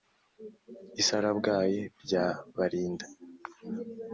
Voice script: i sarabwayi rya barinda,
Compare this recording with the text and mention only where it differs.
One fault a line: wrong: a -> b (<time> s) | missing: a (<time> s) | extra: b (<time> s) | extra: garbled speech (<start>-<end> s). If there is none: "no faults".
no faults